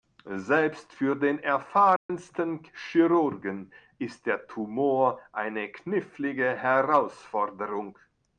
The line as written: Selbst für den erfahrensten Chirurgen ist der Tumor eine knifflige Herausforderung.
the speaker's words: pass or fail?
pass